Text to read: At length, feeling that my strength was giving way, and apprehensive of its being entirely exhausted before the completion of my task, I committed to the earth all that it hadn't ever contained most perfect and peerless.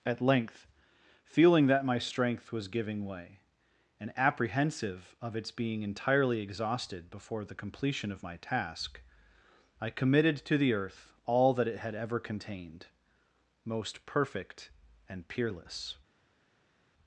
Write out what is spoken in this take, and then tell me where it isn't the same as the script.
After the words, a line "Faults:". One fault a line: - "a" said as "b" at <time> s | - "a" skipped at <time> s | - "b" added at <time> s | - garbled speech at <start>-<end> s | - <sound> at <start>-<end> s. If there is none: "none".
At length, feeling that my strength was giving way, and apprehensive of its being entirely exhausted before the completion of my task, I committed to the earth all that it had ever contained most perfect and peerless.
Faults:
- "hadn't" said as "had" at 11.8 s